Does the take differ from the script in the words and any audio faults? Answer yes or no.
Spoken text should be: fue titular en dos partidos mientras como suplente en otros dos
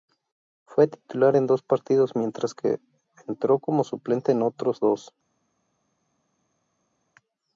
yes